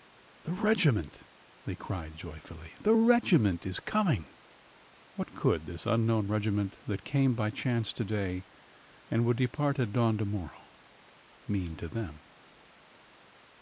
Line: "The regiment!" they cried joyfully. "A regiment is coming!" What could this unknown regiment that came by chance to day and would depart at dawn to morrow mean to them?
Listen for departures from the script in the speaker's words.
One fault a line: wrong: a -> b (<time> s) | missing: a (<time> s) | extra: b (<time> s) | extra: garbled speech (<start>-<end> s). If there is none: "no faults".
wrong: A -> The (2.8 s)